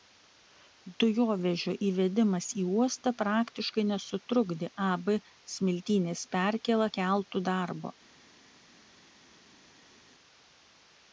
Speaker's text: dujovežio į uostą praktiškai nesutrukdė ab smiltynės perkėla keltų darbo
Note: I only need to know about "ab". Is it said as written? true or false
true